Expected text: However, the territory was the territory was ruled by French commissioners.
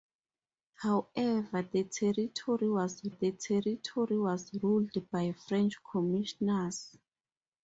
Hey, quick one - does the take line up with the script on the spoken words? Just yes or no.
yes